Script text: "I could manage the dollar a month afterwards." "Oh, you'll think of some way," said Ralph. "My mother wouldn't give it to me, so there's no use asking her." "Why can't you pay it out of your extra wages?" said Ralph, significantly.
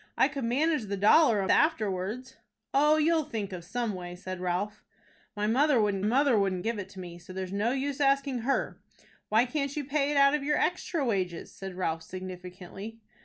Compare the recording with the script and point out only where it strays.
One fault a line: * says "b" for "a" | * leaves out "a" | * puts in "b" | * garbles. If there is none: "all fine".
* leaves out "month"
* puts in "mother wouldn't"